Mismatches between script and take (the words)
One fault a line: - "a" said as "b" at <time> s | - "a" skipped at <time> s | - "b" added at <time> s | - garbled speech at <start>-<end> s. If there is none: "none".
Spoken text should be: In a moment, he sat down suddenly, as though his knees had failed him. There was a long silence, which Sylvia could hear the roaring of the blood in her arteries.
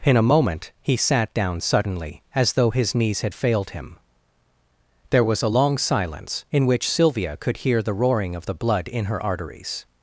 - "in" added at 6.5 s